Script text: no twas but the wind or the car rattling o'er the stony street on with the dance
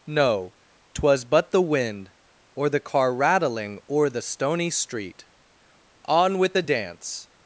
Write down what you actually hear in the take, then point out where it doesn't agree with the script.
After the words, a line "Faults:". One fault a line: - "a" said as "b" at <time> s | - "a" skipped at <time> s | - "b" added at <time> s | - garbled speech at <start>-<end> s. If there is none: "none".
no twas but the wind or the car rattling o'er the stony street on with the dance
Faults:
none